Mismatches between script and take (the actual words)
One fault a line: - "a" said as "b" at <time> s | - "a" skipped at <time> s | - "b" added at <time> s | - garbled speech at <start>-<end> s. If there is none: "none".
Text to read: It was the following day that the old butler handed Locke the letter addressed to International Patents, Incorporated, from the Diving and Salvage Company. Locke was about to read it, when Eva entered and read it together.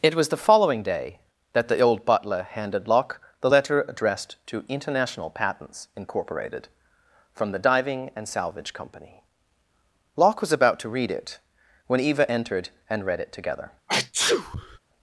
none